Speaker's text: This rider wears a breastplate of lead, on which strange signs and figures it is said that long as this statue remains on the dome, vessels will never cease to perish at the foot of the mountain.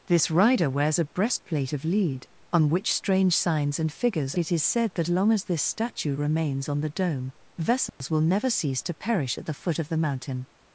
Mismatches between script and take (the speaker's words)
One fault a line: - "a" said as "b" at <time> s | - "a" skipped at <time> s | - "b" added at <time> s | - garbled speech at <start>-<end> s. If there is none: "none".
none